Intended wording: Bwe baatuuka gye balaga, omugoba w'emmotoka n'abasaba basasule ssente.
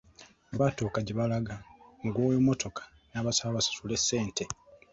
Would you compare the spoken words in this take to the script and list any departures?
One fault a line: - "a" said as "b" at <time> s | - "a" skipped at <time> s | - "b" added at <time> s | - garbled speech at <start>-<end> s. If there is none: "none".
none